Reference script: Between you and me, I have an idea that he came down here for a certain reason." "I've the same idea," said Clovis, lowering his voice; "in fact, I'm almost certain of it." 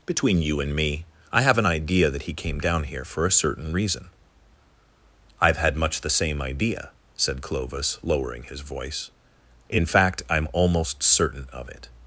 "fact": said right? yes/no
yes